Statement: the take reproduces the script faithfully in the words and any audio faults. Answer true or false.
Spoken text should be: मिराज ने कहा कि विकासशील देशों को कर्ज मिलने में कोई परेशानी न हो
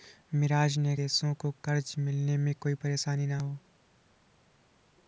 false